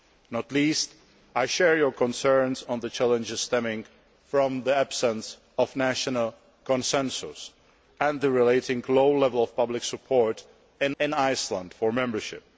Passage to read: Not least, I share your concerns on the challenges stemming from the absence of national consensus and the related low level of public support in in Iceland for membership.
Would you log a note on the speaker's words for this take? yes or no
no